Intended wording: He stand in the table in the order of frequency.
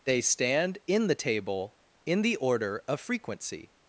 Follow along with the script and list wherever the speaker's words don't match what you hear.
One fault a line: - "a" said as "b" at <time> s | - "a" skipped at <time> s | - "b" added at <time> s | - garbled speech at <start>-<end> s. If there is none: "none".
- "He" said as "They" at 0.1 s